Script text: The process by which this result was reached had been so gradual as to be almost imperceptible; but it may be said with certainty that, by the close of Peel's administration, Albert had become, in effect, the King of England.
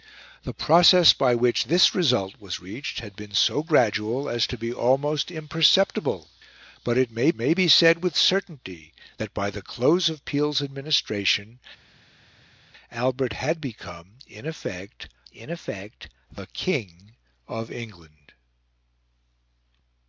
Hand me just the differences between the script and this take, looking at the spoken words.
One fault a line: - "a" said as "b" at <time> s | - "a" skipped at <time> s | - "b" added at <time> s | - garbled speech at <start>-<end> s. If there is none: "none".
- "may" added at 7.3 s
- "in effect" added at 15.3 s